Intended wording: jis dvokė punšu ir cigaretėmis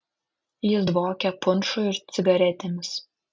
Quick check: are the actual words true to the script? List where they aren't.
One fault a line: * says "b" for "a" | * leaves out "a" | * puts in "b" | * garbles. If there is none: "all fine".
all fine